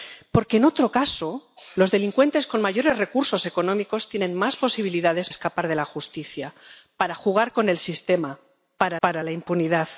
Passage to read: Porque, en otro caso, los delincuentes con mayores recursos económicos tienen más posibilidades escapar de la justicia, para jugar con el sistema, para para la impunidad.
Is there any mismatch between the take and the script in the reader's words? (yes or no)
no